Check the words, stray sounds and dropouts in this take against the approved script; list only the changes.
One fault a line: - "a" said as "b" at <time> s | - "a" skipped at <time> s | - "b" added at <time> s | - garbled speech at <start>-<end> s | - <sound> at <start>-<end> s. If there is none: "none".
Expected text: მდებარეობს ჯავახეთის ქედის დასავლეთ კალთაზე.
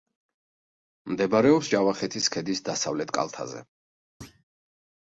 - thud at 4.2-4.4 s